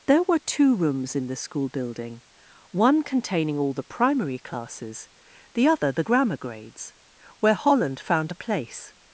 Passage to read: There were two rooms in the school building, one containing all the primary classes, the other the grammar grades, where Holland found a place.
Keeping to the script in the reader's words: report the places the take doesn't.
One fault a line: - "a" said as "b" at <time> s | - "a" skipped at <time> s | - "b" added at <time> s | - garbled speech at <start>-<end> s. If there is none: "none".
none